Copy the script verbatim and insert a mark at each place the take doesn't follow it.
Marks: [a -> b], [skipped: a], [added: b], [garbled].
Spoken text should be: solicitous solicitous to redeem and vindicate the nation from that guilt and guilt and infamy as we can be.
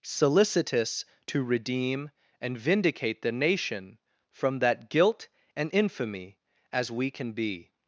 solicitous [skipped: solicitous] to redeem and vindicate the nation from that guilt and [skipped: guilt and] infamy as we can be.